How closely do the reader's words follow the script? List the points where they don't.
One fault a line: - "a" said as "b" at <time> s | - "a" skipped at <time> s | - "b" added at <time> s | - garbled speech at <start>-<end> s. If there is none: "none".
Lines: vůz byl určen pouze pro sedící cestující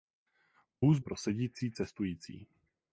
- "byl určen pouze" skipped at 1.0 s